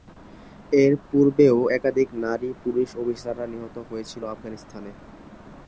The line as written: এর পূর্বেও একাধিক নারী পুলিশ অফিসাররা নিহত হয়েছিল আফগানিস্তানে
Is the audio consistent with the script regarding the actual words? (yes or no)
yes